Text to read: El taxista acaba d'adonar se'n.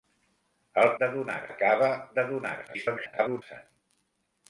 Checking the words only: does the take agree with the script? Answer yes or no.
no